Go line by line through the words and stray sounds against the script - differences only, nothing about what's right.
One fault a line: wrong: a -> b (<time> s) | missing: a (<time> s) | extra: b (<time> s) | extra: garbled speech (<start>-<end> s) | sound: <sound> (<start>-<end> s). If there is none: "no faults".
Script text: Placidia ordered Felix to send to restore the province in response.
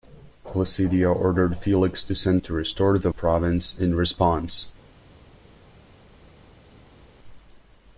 no faults